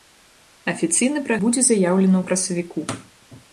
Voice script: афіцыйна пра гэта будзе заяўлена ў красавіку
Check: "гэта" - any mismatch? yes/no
yes